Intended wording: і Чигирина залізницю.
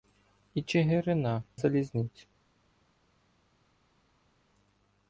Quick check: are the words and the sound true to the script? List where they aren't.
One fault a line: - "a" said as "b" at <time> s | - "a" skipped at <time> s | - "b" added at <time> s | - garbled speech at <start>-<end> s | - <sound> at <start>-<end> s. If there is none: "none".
none